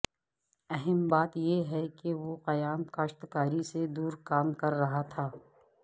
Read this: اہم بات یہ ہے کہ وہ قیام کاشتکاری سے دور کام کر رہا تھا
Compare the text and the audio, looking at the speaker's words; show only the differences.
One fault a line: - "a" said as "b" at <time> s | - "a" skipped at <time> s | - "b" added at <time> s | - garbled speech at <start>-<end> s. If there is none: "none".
none